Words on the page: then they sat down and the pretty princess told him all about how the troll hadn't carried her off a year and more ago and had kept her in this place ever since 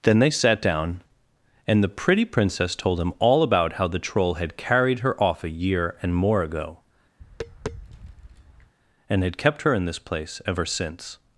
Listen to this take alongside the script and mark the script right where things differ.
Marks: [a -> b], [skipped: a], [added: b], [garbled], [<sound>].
then they sat down and the pretty princess told him all about how the troll [hadn't -> had] carried her off a year and more ago [tap] and had kept her in this place ever since